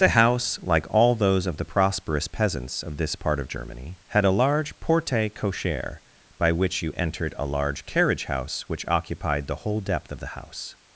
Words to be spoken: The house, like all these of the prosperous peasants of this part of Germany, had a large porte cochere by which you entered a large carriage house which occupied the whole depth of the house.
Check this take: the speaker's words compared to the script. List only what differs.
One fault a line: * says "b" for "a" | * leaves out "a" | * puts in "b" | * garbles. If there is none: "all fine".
* says "those" for "these"